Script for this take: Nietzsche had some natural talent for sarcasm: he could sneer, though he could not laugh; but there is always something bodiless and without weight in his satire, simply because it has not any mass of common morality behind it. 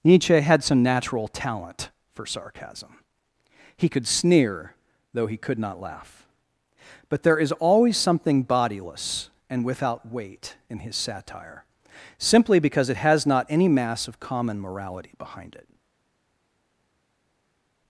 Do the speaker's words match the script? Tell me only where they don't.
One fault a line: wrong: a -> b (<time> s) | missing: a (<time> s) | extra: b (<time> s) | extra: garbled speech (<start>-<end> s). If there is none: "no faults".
no faults